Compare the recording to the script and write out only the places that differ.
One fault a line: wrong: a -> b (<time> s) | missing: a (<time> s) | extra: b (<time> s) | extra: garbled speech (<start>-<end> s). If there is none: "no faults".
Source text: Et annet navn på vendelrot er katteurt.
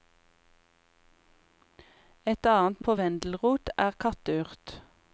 missing: navn (2.8 s)